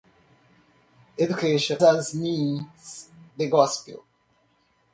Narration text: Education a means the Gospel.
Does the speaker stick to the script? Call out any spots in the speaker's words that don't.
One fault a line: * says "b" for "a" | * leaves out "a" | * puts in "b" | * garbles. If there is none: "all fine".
all fine